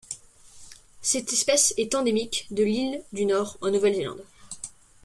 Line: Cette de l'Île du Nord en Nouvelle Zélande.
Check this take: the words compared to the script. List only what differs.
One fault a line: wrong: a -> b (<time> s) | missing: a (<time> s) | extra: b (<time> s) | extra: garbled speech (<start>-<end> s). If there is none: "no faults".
extra: espèce est endémique (1.3 s)